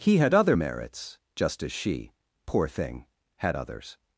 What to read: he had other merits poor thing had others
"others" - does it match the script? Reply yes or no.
yes